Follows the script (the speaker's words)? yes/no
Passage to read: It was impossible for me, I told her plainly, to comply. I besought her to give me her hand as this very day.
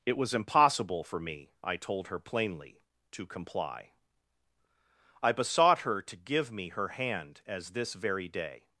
yes